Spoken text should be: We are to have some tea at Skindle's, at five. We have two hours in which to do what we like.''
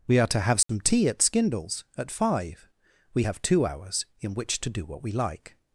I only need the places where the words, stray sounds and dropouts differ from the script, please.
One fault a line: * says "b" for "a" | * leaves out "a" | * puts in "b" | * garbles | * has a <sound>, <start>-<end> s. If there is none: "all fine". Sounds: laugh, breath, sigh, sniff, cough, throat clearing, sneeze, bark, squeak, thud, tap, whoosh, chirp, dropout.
* has a dropout, 0.6-0.7 s